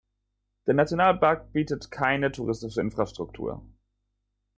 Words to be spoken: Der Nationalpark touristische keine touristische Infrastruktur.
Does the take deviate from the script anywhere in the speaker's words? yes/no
yes